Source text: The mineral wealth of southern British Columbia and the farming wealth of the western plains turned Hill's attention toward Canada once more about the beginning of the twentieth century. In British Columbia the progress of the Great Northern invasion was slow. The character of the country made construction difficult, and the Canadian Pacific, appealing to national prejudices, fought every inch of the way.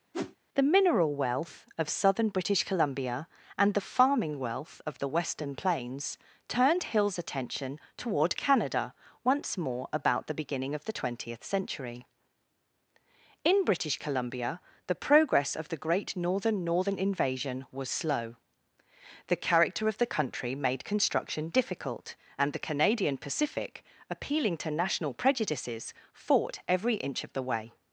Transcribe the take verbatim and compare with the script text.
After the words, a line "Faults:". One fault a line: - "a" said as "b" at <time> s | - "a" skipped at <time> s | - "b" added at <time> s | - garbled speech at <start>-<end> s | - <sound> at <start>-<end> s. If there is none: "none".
The mineral wealth of southern British Columbia and the farming wealth of the western plains turned Hill's attention toward Canada once more about the beginning of the twentieth century. In British Columbia the progress of the Great Northern Northern invasion was slow. The character of the country made construction difficult, and the Canadian Pacific, appealing to national prejudices, fought every inch of the way.
Faults:
- whoosh at 0.1-0.4 s
- "Northern" added at 16.7 s